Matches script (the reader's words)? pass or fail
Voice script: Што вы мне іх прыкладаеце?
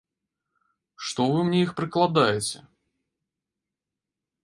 pass